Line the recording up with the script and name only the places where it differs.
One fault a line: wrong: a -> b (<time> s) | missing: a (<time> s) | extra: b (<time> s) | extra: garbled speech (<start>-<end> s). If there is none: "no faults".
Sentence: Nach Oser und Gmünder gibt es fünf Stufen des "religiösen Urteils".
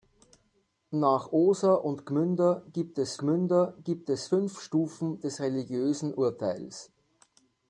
extra: Gmünder gibt es (3.2 s)